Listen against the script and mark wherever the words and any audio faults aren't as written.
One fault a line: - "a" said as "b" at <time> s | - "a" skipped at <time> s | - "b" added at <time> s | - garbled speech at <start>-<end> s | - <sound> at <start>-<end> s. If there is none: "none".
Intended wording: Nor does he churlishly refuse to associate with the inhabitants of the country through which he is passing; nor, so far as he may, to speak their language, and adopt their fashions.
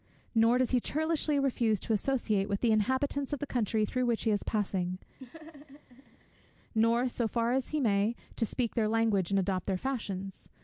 - laugh at 5.2-6.5 s